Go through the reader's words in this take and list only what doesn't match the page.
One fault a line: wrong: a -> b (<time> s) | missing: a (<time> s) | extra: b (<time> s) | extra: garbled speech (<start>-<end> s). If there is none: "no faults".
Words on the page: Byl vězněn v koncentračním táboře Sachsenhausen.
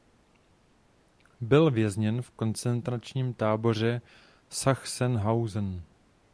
no faults